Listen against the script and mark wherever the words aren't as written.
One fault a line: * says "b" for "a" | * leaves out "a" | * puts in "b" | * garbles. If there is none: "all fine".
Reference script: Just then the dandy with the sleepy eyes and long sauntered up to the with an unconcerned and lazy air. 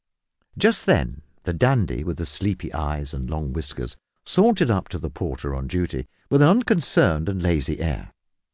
* puts in "whiskers"
* puts in "porter on duty"